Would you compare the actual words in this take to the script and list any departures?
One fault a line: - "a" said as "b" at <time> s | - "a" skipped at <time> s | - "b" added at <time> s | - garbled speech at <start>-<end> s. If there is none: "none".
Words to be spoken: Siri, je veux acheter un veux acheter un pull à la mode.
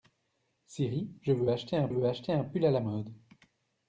none